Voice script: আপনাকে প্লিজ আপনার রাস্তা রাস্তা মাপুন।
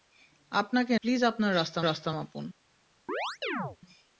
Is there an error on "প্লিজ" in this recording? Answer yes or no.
no